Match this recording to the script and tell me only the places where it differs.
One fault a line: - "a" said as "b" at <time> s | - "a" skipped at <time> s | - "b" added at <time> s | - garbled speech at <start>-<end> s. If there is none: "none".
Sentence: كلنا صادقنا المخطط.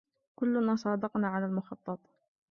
- "على" added at 1.3 s